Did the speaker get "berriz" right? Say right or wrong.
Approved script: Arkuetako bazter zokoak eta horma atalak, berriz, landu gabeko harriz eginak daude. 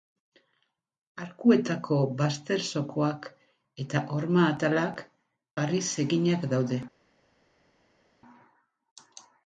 wrong